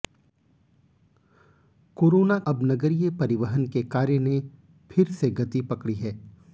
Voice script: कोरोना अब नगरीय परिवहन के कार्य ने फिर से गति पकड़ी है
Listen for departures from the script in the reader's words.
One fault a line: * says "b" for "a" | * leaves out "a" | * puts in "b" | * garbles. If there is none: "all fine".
all fine